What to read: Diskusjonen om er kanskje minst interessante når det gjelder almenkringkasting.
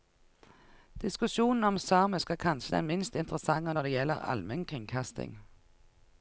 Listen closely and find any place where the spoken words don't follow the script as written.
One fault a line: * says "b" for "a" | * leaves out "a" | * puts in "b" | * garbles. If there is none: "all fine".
* puts in "samisk"
* puts in "den"